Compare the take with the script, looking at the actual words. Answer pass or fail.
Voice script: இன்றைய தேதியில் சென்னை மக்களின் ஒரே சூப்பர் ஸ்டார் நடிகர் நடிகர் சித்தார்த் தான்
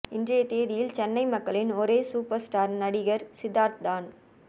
fail